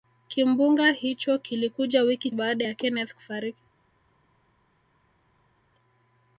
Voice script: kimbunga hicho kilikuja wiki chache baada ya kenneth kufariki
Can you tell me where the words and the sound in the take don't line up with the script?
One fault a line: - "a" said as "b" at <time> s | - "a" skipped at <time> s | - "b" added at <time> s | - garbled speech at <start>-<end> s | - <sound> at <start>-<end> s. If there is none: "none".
- "chache" skipped at 2.3 s